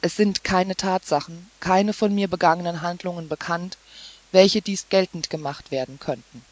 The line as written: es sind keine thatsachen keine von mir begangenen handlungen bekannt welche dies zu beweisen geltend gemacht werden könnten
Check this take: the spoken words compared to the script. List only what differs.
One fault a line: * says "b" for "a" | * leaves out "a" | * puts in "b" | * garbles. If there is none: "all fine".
* leaves out "zu beweisen"